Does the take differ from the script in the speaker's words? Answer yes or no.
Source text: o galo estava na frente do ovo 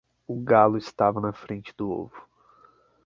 no